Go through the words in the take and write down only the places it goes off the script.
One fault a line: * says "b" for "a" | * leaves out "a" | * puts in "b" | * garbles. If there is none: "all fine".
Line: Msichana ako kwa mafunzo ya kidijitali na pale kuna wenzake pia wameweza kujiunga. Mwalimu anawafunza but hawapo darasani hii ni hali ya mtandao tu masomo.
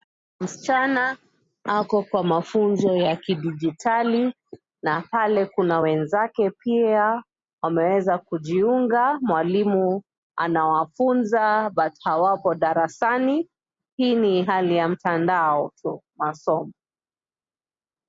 all fine